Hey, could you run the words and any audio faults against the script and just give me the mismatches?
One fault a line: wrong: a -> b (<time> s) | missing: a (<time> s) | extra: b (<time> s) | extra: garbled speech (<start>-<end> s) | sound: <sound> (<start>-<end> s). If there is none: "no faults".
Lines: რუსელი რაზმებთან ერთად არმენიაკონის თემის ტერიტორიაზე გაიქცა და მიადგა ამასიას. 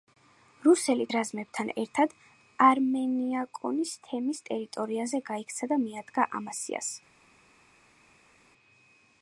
no faults